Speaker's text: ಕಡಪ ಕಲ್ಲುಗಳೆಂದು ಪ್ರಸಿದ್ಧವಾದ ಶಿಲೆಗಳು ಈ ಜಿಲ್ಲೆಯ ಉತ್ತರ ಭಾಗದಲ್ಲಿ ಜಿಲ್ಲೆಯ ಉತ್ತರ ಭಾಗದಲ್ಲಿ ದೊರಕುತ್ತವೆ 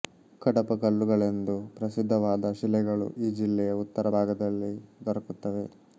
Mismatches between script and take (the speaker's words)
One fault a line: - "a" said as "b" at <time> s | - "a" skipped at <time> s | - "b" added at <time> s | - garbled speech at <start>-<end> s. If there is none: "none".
- "ಜಿಲ್ಲೆಯ ಉತ್ತರ ಭಾಗದಲ್ಲಿ" skipped at 4.7 s